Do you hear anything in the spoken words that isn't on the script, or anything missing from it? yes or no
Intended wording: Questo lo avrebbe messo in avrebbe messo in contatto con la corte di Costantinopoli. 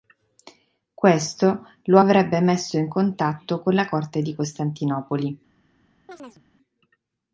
yes